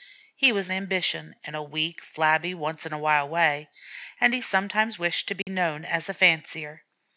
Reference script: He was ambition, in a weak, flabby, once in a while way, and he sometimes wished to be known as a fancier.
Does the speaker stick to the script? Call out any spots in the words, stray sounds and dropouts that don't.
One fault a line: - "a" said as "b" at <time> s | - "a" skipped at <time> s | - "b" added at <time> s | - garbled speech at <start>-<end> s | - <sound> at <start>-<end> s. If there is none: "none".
- dropout at 5.4-5.5 s